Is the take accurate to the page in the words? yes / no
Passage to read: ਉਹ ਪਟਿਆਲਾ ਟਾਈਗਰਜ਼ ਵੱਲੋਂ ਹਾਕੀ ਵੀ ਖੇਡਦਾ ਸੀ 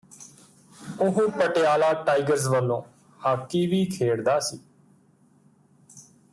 yes